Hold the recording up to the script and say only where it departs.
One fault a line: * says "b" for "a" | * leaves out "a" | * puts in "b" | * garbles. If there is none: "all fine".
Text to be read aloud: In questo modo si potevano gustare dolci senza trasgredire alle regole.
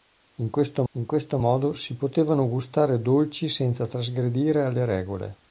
* puts in "in questo"